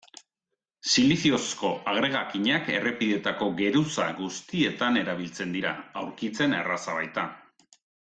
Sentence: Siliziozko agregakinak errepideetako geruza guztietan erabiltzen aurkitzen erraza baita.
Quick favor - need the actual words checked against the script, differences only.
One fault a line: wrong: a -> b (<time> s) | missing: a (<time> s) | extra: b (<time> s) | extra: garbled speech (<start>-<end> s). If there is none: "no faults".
extra: dira (5.6 s)